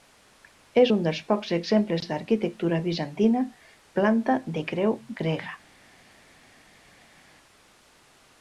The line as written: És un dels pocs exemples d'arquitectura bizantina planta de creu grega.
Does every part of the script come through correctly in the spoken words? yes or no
yes